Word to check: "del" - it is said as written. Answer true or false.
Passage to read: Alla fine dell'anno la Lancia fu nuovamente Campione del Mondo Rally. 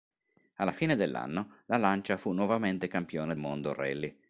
false